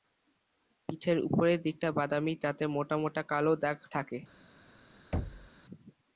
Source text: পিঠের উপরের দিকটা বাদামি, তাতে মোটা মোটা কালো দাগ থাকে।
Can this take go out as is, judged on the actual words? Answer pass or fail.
pass